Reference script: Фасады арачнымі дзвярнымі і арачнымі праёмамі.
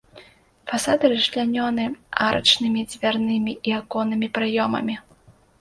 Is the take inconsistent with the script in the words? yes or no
yes